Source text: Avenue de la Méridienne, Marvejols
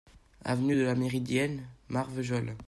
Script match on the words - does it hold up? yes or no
yes